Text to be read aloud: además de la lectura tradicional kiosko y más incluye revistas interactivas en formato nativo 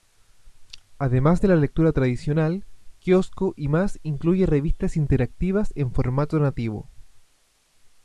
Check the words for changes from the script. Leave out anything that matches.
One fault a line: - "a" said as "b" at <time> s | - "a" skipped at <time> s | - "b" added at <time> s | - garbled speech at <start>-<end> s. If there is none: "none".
none